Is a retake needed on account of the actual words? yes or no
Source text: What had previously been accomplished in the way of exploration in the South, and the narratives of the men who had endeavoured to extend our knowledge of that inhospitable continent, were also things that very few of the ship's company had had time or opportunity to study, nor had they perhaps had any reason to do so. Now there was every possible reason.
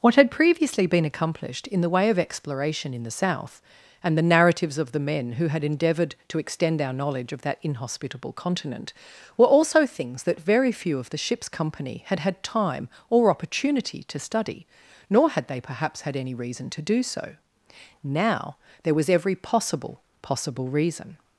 yes